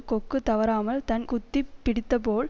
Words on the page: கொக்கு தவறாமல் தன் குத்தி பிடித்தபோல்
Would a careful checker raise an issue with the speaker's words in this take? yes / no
no